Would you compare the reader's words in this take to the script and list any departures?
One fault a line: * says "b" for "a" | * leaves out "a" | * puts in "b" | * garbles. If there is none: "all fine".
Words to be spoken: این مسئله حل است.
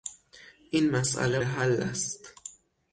all fine